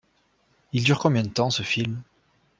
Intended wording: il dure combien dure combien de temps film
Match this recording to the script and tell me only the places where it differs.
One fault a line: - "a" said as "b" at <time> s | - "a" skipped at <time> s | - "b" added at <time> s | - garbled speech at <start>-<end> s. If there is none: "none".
- "dure combien" skipped at 1.2 s
- "ce" added at 1.5 s